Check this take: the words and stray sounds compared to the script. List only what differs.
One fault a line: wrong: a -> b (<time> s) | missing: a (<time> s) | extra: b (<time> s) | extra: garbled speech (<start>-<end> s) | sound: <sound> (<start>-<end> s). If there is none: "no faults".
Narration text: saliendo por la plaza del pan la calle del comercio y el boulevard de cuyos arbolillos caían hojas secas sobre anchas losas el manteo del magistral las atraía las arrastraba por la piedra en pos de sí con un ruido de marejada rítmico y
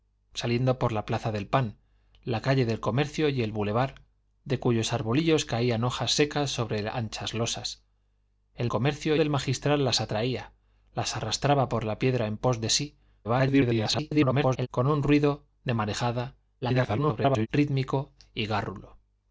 wrong: manteo -> comercio (8.7 s)
extra: garbled speech (13.2-14.7 s)
extra: garbled speech (16.6-17.5 s)